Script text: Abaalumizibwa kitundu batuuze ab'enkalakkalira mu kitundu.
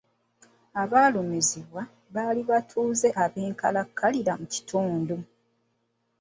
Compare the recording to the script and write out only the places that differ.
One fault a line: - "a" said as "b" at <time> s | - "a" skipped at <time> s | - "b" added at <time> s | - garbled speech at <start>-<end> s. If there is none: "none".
- "kitundu" said as "baali" at 2.1 s